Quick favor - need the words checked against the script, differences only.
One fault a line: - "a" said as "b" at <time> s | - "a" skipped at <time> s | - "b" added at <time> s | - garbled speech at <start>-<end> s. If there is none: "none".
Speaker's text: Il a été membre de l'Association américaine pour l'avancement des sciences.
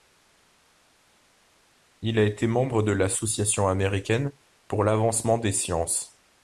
none